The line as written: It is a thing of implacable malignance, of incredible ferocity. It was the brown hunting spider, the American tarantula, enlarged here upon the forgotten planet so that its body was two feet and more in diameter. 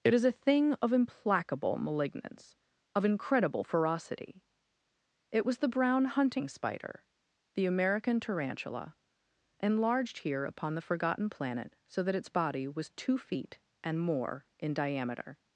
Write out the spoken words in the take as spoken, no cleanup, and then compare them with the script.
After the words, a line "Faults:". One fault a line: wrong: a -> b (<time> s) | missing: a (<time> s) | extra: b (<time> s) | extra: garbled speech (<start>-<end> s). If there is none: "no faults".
It is a thing of implacable malignance, of incredible ferocity. It was the brown hunting spider, the American tarantula, enlarged here upon the forgotten planet so that its body was two feet and more in diameter.
Faults:
no faults